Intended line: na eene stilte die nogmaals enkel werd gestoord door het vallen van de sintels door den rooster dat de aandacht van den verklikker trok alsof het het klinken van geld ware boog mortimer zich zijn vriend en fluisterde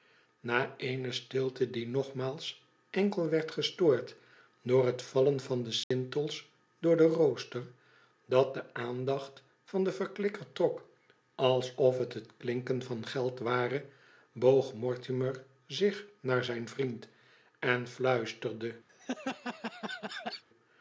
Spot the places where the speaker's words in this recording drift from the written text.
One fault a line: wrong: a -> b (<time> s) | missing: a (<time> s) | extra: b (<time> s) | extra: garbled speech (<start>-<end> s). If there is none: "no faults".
extra: naar (16.2 s)